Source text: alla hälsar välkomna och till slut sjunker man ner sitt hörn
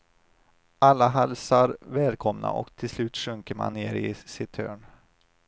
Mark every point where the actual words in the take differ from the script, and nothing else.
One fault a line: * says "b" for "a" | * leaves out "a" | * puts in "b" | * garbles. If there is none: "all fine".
* puts in "i"